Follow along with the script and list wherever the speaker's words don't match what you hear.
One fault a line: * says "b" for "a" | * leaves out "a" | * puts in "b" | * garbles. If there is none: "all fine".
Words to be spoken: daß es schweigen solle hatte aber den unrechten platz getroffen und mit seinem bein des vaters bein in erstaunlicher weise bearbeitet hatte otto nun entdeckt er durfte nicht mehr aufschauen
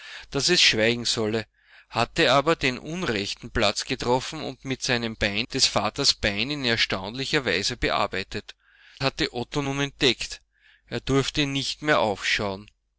all fine